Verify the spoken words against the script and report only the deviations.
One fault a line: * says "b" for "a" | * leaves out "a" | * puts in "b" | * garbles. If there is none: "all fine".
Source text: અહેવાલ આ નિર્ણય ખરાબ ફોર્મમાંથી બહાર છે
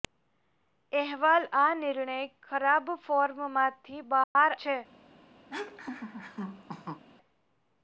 all fine